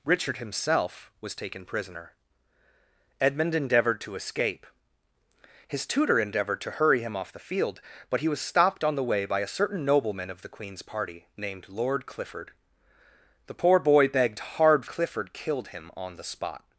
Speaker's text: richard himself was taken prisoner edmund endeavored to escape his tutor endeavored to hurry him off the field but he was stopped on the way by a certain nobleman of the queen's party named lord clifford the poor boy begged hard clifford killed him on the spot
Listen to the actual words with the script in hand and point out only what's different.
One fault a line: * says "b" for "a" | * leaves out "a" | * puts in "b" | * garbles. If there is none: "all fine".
all fine